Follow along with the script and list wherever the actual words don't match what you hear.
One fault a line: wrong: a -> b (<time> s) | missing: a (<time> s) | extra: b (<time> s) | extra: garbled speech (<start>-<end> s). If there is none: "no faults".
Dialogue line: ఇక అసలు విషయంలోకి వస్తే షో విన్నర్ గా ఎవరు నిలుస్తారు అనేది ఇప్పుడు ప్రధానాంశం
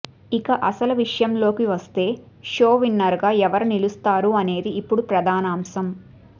no faults